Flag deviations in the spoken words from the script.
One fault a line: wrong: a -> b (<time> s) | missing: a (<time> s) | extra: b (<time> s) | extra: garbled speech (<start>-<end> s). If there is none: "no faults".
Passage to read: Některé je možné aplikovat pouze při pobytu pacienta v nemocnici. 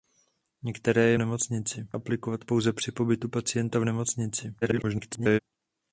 wrong: možné -> nemocnici (1.2 s)
extra: garbled speech (4.6-5.4 s)